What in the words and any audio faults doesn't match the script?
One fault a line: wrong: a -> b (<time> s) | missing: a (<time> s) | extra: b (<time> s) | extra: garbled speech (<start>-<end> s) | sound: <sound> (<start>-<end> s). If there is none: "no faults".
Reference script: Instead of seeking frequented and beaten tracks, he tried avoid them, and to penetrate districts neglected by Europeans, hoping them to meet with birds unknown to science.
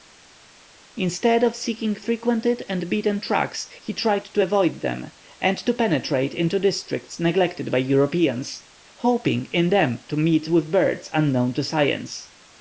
extra: to (4.2 s)
extra: into (6.3 s)
extra: in (9.5 s)